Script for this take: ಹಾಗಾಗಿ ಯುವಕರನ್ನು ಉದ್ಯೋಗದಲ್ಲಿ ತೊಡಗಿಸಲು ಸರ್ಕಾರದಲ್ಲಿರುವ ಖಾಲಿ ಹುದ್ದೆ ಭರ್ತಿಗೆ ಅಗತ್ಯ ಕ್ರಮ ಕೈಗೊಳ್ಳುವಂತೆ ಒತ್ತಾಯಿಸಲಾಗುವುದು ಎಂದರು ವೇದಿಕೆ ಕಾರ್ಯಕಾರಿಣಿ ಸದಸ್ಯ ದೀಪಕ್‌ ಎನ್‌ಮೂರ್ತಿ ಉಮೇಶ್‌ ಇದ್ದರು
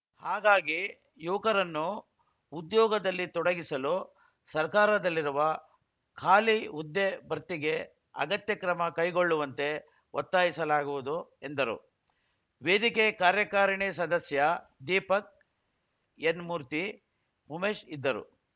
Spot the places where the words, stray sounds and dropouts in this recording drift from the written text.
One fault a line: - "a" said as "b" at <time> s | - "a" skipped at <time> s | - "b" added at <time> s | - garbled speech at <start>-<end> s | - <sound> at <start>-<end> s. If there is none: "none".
none